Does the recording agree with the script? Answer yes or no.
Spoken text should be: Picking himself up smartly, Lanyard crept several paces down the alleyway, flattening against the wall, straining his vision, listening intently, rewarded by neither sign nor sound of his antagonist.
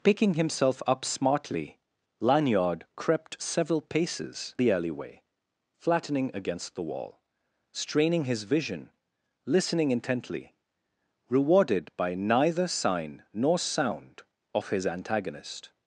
no